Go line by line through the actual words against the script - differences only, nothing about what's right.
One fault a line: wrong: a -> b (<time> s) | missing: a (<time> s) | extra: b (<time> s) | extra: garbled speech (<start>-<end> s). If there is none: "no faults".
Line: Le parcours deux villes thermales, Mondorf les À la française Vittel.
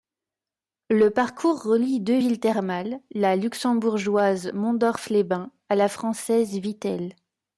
extra: relie (1.6 s)
extra: la luxembourgeoise (3.1 s)
extra: Bains (5.2 s)